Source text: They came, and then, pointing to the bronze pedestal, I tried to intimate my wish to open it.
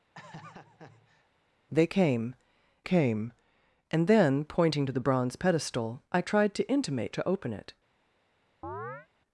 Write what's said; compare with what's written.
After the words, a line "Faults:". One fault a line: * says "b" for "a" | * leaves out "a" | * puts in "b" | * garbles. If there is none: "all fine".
They came came, and then, pointing to the bronze pedestal, I tried to intimate to open it.
Faults:
* puts in "came"
* leaves out "my wish"